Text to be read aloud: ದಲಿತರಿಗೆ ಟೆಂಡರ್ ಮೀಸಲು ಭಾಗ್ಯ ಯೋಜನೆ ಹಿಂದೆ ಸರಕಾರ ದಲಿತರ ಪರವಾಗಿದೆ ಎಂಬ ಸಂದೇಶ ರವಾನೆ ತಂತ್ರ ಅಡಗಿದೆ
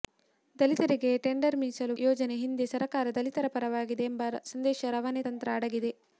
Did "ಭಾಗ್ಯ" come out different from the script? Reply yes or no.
yes